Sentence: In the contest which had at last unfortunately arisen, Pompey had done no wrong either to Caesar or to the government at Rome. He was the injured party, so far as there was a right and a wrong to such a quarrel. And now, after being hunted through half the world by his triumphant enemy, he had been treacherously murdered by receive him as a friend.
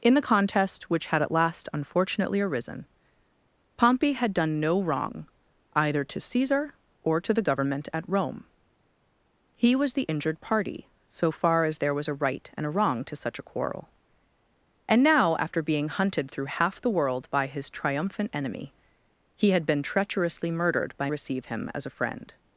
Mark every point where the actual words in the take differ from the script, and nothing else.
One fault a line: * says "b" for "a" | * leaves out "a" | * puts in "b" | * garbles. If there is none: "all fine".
all fine